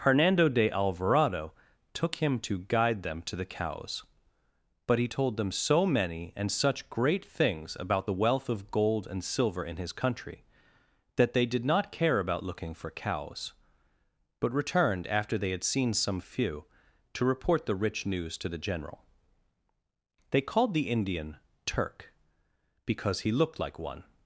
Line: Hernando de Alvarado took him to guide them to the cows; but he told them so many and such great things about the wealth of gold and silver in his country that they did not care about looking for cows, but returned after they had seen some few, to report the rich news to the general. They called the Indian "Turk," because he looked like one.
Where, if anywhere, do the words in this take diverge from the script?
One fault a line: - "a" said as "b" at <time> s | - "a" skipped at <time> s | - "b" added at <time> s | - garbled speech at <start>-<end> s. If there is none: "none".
none